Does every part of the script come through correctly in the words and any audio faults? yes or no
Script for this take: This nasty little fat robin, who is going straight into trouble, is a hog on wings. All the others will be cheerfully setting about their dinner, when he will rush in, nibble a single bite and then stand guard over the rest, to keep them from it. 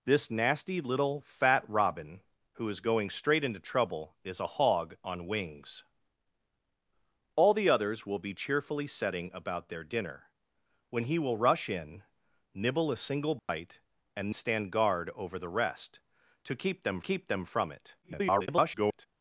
no